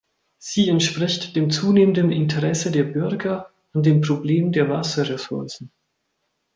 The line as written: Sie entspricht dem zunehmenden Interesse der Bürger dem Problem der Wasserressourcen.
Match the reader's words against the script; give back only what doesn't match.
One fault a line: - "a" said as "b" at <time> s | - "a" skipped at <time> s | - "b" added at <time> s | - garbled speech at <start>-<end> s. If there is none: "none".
- "an" added at 3.7 s